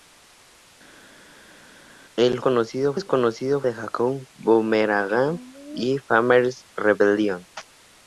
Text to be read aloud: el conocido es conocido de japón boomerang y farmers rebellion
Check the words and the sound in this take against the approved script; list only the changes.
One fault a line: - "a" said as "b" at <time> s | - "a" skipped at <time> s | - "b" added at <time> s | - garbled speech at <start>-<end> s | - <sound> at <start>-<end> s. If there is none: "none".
none